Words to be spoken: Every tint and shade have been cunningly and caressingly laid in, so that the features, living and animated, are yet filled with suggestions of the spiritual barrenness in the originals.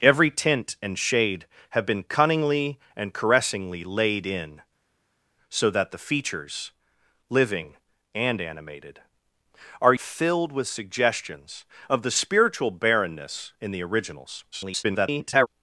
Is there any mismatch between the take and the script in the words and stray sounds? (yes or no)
yes